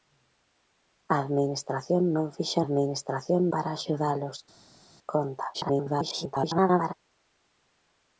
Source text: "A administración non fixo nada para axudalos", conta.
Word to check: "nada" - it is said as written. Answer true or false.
false